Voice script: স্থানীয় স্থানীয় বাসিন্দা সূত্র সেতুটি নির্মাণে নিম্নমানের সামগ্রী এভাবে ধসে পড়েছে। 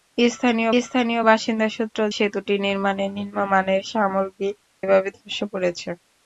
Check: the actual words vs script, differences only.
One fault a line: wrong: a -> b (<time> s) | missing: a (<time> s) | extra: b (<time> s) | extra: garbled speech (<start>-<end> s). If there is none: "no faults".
no faults